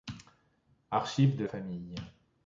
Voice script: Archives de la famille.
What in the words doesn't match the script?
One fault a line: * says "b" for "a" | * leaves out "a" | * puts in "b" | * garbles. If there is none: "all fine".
* leaves out "la"